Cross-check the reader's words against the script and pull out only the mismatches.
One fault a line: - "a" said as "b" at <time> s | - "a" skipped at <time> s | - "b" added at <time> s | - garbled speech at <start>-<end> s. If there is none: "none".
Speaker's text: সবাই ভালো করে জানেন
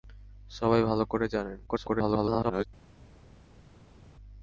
- garbled speech at 1.7-2.7 s